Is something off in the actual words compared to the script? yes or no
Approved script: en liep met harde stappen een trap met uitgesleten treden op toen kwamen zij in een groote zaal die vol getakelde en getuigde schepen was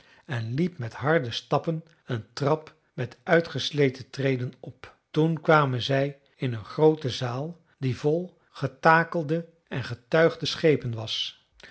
no